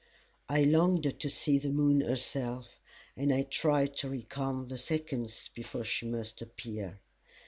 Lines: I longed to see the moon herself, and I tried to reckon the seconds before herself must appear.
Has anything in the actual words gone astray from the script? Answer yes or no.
yes